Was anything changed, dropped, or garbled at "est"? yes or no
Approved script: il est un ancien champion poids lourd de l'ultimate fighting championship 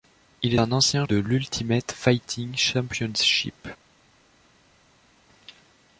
yes